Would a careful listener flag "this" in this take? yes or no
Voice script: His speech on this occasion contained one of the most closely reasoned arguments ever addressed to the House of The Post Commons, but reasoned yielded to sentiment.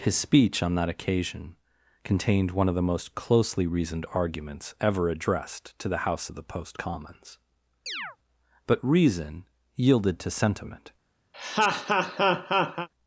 yes